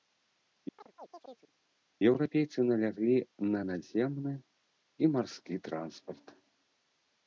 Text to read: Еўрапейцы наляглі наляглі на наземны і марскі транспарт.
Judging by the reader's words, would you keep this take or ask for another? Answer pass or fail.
fail